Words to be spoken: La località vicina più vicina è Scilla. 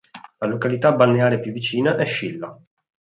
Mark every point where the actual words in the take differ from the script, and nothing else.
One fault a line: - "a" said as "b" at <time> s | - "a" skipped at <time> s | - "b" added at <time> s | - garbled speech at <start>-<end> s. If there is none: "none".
- "vicina" said as "balneare" at 0.9 s